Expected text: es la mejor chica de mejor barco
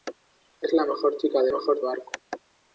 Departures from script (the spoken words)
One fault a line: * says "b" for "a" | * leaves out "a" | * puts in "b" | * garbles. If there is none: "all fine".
all fine